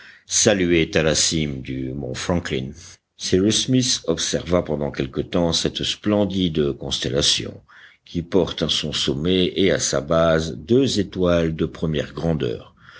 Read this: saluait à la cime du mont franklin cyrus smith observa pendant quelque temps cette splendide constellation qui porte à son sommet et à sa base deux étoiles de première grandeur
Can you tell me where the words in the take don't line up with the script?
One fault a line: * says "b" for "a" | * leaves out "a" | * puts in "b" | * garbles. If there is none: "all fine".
all fine